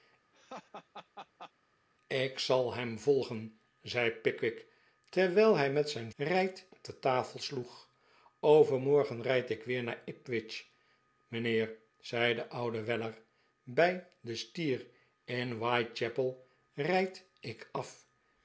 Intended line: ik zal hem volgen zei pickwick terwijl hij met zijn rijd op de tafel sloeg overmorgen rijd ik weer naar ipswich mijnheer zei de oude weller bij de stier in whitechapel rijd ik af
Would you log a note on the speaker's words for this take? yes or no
no